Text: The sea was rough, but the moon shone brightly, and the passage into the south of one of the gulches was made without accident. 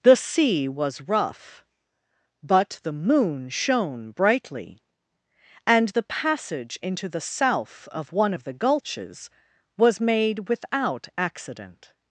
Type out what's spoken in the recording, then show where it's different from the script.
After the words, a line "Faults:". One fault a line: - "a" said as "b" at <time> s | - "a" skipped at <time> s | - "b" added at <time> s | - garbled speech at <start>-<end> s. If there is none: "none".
The sea was rough, but the moon shone brightly, and the passage into the south of one of the gulches was made without accident.
Faults:
none